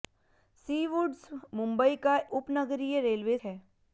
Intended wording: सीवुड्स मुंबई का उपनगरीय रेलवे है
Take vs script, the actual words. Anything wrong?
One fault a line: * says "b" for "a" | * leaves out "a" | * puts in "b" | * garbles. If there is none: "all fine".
all fine